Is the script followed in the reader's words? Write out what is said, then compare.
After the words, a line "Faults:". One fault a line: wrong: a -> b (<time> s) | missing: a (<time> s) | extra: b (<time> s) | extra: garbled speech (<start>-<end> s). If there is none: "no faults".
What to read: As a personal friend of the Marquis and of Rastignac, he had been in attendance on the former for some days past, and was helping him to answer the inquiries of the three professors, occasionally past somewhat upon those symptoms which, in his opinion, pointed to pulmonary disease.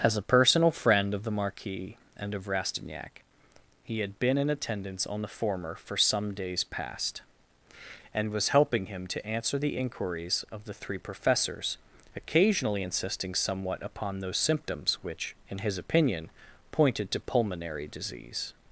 As a personal friend of the Marquis and of Rastignac, he had been in attendance on the former for some days past, and was helping him to answer the inquiries of the three professors, occasionally insisting somewhat upon those symptoms which, in his opinion, pointed to pulmonary disease.
Faults:
wrong: past -> insisting (12.8 s)